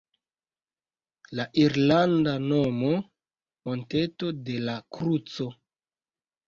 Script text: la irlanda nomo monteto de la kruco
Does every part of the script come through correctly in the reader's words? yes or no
yes